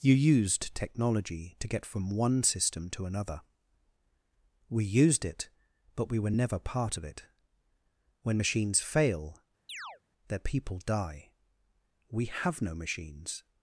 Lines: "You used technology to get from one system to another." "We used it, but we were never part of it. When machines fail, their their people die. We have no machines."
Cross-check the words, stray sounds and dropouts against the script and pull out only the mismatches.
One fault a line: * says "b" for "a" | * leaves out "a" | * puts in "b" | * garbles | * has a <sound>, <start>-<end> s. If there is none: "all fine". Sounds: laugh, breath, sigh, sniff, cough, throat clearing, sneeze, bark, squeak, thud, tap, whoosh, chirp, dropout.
* has a chirp, 9.7-10.0 s
* leaves out "their"